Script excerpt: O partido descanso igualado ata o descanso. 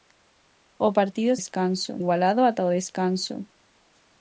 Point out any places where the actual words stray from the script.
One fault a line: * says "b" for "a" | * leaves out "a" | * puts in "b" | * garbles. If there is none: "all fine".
all fine